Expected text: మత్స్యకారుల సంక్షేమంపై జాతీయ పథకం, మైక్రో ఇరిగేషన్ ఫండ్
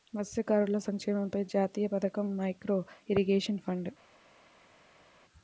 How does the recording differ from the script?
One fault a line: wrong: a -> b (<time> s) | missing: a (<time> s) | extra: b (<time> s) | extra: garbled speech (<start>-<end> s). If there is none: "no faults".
no faults